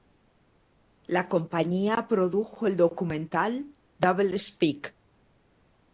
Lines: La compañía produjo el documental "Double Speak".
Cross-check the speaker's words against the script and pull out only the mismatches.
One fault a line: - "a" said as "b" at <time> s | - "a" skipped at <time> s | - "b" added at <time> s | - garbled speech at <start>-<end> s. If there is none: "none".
none